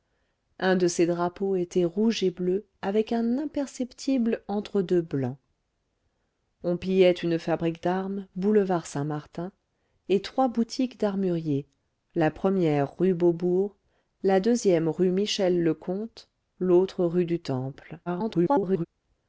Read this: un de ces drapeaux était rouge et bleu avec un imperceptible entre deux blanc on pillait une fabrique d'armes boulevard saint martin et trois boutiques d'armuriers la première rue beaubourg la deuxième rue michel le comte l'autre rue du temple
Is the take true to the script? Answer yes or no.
no